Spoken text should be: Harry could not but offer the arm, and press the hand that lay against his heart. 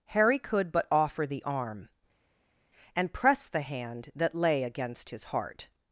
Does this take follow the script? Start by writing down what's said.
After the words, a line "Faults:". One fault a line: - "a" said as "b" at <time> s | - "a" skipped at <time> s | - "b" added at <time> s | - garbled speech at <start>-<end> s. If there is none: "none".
Harry could but offer the arm, and press the hand that lay against his heart.
Faults:
- "not" skipped at 0.7 s